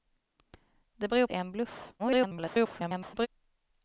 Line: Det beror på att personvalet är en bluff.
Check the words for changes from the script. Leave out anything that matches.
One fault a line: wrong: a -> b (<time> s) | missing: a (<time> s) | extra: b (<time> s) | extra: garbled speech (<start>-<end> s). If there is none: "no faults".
missing: på att personvalet (1.3 s)
extra: garbled speech (2.0-3.3 s)